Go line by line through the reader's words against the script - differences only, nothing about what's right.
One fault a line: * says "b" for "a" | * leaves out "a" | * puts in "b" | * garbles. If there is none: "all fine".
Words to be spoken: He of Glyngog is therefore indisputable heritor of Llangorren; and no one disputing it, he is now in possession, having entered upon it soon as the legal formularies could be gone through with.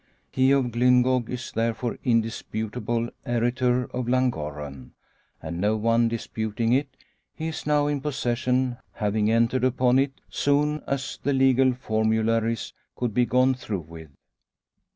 all fine